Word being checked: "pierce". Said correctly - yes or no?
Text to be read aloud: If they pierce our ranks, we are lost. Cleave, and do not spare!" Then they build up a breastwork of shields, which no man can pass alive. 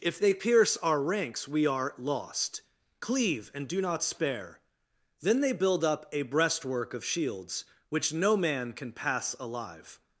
yes